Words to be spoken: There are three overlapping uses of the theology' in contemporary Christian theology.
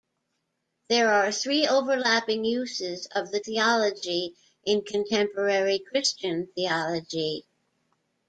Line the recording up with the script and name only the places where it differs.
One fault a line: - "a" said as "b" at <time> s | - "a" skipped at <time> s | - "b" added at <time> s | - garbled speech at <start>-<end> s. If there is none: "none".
none